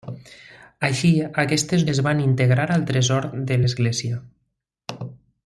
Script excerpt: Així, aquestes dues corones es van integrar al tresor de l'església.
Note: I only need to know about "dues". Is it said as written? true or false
false